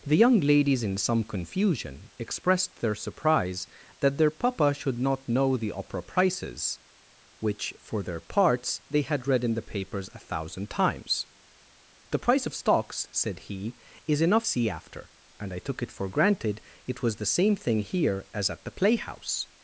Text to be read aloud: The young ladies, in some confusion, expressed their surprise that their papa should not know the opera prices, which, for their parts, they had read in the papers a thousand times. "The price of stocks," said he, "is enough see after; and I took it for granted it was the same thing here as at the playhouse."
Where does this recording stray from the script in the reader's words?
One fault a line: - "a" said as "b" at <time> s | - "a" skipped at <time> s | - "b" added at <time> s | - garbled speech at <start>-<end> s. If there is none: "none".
none